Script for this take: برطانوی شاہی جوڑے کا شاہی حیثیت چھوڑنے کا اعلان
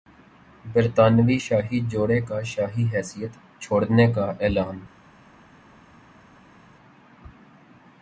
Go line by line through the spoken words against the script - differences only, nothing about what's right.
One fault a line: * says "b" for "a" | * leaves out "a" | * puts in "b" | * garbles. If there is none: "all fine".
all fine